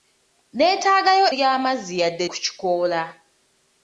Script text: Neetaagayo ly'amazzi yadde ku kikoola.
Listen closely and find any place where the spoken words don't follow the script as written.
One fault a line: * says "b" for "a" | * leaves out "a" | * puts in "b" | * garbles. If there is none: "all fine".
all fine